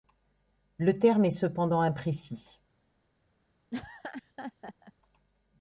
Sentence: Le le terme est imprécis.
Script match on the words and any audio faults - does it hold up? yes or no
no